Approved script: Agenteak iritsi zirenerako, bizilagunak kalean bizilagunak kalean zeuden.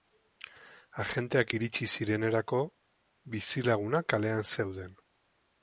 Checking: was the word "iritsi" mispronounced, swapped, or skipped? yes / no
no